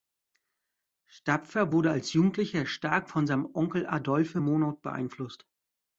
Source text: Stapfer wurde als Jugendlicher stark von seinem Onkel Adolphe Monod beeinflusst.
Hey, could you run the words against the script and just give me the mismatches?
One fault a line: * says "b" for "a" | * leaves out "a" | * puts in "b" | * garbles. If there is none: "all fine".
all fine